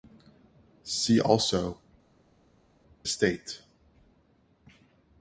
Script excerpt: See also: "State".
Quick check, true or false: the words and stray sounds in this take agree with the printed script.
true